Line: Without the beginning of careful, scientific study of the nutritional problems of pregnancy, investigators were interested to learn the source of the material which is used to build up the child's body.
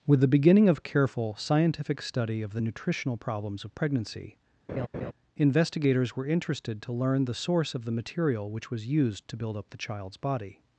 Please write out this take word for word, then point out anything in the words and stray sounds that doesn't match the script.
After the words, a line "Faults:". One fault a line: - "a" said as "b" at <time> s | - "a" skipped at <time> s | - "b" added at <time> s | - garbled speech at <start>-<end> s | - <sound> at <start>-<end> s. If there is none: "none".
With the beginning of careful, scientific study of the nutritional problems of pregnancy, investigators were interested to learn the source of the material which was used to build up the child's body.
Faults:
- "Without" said as "With" at 0.1 s
- laugh at 4.7-5.1 s
- "is" said as "was" at 8.7 s